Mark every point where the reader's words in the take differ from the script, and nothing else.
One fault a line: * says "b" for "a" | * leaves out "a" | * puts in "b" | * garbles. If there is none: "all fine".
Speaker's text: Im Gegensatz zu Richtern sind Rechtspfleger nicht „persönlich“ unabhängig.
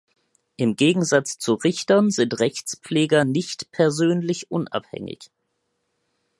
all fine